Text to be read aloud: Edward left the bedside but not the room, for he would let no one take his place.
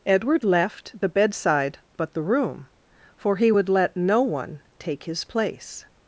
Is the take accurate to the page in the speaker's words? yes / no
no